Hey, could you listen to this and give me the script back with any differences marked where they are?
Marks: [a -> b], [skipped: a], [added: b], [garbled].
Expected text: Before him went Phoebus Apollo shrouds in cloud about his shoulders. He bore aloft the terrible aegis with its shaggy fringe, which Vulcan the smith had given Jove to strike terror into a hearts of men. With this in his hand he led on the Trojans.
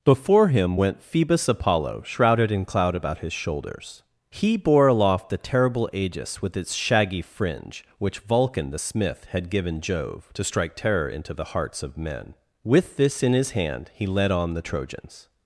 Before him went Phoebus Apollo [shrouds -> shrouded] in cloud about his shoulders. He bore aloft the terrible aegis with its shaggy fringe, which Vulcan the smith had given Jove to strike terror into [a -> the] hearts of men. With this in his hand he led on the Trojans.